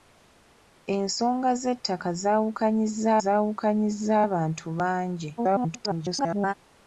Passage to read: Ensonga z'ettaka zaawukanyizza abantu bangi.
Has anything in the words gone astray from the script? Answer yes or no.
yes